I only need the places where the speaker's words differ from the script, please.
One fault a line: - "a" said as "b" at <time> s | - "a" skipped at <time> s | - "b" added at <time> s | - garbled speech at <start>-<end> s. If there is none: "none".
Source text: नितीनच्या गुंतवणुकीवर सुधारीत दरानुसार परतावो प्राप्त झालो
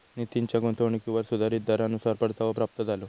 none